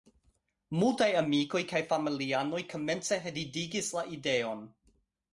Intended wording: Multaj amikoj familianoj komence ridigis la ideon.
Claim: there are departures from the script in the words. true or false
true